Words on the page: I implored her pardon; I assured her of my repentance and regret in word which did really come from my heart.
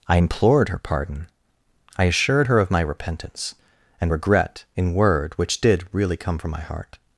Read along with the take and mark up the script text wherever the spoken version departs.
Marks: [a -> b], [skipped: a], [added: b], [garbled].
I implored her pardon; I assured her of my repentance and regret in word which did really come from my heart.